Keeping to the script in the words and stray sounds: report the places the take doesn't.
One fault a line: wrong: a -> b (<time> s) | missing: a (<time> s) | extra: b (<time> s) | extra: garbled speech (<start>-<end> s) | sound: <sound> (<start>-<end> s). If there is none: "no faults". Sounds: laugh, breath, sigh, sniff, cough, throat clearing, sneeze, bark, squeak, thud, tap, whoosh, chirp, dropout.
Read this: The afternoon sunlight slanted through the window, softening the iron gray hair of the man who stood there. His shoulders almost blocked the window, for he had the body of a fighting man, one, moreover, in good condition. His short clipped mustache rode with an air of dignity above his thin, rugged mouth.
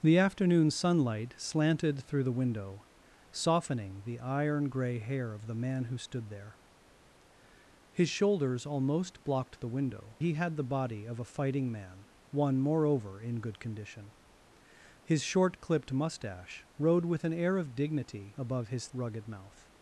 missing: for (10.2 s)
missing: thin (18.9 s)